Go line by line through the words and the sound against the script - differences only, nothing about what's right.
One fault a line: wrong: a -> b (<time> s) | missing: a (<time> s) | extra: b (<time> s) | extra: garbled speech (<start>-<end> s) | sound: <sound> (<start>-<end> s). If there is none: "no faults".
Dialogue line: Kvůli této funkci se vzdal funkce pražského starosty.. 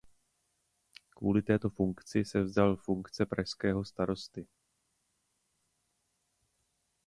no faults